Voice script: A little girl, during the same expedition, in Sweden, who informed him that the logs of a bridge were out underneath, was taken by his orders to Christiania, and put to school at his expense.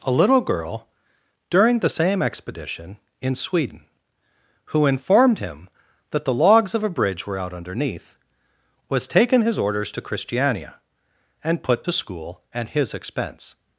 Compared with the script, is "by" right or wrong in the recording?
wrong